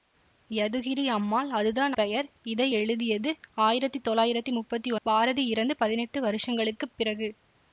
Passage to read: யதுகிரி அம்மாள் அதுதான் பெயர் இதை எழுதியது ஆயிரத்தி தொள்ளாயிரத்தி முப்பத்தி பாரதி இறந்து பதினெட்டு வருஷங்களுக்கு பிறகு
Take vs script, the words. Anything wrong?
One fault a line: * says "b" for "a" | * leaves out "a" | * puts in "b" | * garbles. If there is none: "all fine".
all fine